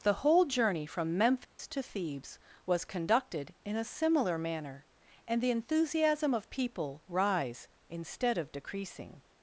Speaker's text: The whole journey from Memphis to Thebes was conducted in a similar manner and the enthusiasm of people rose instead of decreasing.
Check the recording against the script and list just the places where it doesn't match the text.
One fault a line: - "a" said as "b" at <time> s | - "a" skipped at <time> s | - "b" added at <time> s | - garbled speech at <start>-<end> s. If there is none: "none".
- "rose" said as "rise" at 7.1 s